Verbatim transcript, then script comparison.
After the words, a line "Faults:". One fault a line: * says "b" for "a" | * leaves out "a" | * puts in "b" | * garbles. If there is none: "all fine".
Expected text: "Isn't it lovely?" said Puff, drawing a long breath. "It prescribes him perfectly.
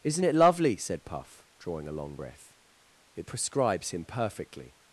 "Isn't it lovely?" said Puff, drawing a long breath. "It prescribes him perfectly.
Faults:
all fine